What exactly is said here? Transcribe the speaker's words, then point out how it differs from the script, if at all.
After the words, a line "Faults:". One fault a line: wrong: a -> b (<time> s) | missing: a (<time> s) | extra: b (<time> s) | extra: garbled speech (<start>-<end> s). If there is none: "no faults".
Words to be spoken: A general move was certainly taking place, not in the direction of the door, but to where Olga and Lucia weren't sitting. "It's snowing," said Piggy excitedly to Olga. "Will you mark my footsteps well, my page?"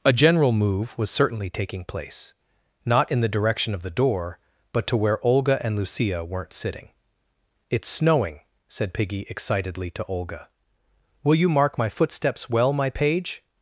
A general move was certainly taking place, not in the direction of the door, but to where Olga and Lucia weren't sitting. "It's snowing," said Piggy excitedly to Olga. "Will you mark my footsteps well, my page?"
Faults:
no faults